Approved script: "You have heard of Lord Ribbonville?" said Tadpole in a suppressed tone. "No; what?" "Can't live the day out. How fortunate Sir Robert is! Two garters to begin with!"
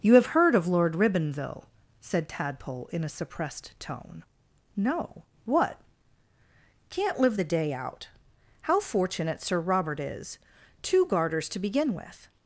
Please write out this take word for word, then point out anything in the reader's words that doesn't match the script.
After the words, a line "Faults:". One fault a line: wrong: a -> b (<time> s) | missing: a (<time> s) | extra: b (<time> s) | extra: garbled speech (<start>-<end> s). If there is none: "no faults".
"You have heard of Lord Ribbonville?" said Tadpole in a suppressed tone. "No; what?" "Can't live the day out. How fortunate Sir Robert is! Two garters to begin with!"
Faults:
no faults